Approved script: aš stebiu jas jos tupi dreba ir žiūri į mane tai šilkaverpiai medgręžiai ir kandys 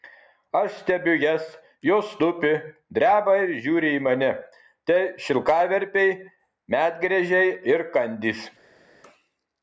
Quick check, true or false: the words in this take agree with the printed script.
true